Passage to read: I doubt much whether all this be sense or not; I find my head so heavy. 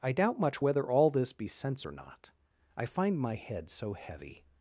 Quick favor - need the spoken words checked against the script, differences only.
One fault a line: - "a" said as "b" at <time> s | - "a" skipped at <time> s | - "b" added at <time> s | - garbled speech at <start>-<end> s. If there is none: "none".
none